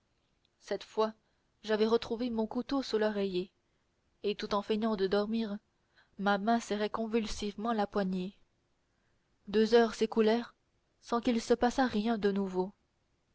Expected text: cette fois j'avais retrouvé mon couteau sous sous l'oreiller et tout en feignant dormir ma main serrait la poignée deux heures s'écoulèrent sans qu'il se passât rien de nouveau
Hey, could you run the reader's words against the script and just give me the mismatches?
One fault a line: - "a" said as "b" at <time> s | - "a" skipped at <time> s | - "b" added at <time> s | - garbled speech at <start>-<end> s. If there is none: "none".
- "sous" skipped at 3.0 s
- "de" added at 5.0 s
- "convulsivement" added at 6.9 s